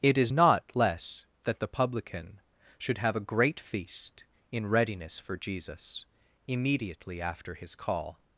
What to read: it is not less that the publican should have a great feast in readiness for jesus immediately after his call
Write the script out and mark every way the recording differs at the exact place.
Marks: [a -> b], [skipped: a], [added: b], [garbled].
it is not less that the publican should have a great feast in readiness for jesus immediately after his call